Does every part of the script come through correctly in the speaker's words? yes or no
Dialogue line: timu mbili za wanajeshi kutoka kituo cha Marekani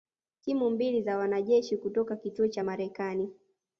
yes